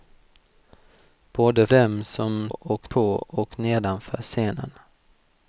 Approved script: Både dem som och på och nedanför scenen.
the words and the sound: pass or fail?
pass